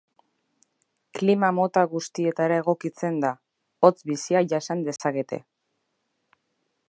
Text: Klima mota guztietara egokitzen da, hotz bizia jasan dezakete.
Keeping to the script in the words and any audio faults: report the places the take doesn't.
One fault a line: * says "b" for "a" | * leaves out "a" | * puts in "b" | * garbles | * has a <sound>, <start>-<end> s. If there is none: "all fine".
* has a dropout, 5.0-5.0 s